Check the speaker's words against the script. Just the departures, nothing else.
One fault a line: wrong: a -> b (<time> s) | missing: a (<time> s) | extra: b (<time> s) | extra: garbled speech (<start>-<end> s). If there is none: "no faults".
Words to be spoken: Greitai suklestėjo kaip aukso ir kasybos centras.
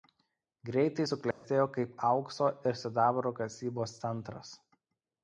extra: sidabro (2.8 s)